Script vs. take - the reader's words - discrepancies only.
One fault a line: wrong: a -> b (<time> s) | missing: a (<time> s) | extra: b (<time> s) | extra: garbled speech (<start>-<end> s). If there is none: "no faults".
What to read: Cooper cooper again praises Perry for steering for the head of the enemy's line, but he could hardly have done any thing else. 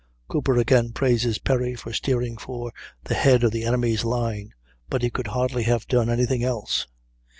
missing: cooper (0.6 s)